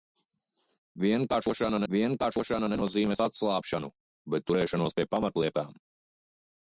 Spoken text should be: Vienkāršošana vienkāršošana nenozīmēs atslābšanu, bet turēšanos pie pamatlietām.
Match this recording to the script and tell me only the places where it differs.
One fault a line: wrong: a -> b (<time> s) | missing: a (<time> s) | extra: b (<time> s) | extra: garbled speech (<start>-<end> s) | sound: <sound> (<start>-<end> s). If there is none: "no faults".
no faults